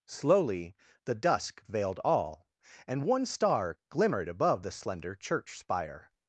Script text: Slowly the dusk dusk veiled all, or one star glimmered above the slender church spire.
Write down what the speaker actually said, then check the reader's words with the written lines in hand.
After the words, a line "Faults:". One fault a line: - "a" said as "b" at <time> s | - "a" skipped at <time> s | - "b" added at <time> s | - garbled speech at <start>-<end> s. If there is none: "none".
Slowly the dusk veiled all, and one star glimmered above the slender church spire.
Faults:
- "dusk" skipped at 1.6 s
- "or" said as "and" at 2.9 s